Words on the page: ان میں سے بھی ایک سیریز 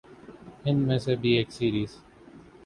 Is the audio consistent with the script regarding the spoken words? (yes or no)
yes